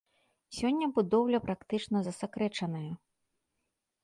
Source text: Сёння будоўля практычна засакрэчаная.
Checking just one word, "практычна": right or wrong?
right